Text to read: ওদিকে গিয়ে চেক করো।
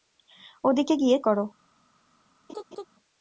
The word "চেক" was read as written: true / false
false